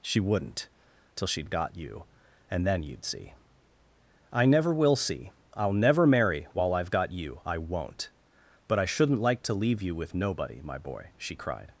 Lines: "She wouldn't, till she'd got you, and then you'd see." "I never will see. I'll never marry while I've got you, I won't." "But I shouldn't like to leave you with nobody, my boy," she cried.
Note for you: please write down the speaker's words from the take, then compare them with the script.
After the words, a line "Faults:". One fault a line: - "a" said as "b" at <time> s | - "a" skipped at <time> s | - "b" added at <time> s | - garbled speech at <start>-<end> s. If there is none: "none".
"She wouldn't, till she'd got you, and then you'd see." "I never will see. I'll never marry while I've got you, I won't." "But I shouldn't like to leave you with nobody, my boy," she cried.
Faults:
none